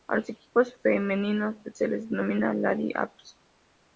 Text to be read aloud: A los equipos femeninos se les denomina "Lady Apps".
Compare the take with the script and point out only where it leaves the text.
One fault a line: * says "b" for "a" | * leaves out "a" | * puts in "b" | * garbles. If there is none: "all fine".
all fine